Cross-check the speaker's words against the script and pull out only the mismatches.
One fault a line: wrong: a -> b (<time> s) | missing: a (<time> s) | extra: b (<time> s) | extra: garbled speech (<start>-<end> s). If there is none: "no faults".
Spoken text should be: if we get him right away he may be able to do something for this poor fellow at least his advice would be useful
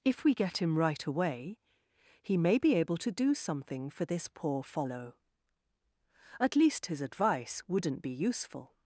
wrong: would -> wouldn't (7.7 s)